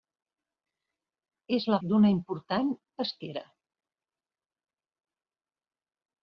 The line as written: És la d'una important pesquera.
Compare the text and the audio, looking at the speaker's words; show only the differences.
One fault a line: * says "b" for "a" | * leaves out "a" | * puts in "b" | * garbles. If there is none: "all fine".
all fine